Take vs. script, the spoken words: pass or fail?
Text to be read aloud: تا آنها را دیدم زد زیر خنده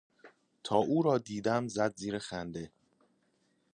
fail